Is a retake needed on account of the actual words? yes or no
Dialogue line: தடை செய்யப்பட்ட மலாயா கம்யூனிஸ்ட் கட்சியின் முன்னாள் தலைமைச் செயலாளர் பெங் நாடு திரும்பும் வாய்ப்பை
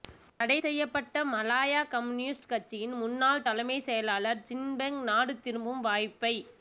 yes